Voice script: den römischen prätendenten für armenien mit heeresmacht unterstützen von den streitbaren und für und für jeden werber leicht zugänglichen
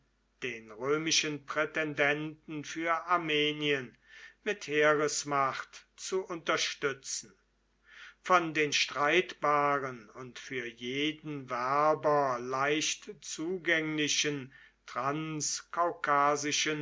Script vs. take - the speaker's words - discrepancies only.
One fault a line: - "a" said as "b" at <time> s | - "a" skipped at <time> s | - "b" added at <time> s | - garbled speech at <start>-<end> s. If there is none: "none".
- "zu" added at 6.0 s
- "und für" skipped at 10.6 s